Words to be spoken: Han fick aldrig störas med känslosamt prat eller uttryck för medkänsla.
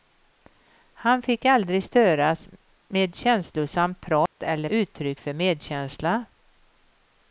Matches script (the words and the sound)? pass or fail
fail